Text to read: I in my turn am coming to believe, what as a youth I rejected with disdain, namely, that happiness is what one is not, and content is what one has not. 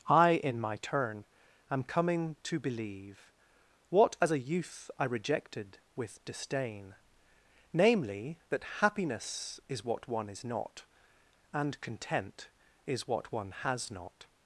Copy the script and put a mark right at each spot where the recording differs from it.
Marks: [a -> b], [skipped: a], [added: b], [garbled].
I in my turn am coming to believe, what as a youth I rejected with disdain, namely, that happiness is what one is not, and content is what one has not.